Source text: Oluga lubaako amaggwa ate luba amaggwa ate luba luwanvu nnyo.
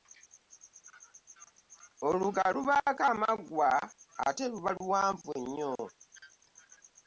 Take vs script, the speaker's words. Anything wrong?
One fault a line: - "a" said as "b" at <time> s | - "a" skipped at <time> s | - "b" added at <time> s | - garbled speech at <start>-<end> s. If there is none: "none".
- "amaggwa ate luba" skipped at 4.7 s